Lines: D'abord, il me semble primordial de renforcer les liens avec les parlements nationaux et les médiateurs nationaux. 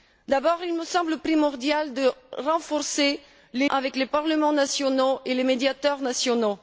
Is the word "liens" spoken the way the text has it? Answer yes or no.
no